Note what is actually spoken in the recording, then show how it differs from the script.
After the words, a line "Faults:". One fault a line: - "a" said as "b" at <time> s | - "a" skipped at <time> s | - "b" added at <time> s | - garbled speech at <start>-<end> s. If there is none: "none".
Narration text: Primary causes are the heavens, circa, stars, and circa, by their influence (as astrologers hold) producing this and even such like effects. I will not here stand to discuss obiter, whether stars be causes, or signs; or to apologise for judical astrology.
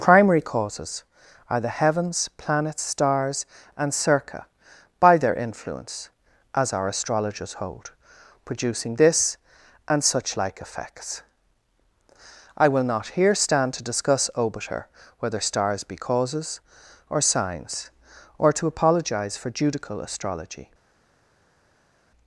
Primary causes are the heavens, planets, stars, and circa, by their influence (as our astrologers hold) producing this and such like effects. I will not here stand to discuss obiter, whether stars be causes, or signs; or to apologise for judical astrology.
Faults:
- "circa" said as "planets" at 2.4 s
- "our" added at 6.7 s
- "even" skipped at 10.0 s